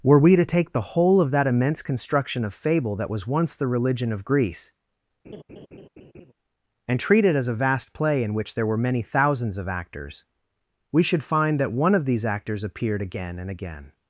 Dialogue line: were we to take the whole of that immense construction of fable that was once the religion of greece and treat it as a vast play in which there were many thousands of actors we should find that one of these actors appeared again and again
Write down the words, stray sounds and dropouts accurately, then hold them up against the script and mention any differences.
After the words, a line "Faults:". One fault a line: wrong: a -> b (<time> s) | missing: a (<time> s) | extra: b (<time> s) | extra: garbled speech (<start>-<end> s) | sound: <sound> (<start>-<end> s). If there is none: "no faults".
were we to take the whole of that immense construction of fable that was once the religion of greece and treat it as a vast play in which there were many thousands of actors we should find that one of these actors appeared again and again
Faults:
sound: laugh (5.2-6.3 s)